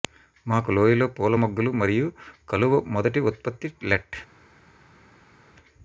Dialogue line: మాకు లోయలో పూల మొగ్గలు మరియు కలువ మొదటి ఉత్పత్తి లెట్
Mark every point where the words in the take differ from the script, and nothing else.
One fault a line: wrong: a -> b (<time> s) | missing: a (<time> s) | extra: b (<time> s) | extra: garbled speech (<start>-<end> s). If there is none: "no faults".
no faults